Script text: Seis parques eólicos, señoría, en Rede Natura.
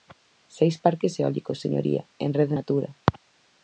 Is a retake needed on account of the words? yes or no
no